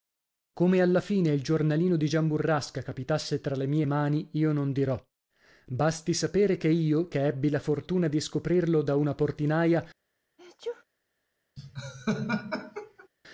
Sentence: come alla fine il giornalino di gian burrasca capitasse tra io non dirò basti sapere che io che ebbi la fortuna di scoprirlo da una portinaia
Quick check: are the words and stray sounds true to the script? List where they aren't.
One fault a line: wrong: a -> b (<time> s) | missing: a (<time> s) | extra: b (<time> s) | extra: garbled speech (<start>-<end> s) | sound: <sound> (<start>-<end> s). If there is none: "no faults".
extra: le mie mani (3.6 s)
sound: sneeze (10.4-10.8 s)
sound: laugh (11.6-13.1 s)